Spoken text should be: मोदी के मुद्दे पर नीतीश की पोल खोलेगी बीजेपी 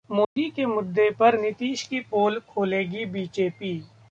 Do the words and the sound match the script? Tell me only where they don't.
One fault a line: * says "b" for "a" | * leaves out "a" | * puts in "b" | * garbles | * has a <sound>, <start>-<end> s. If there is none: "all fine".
* has a dropout, 0.2-0.4 s